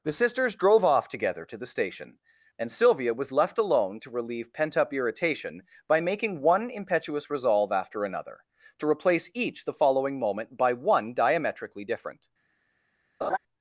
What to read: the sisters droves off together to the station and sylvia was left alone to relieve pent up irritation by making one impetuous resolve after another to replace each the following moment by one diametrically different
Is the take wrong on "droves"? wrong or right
wrong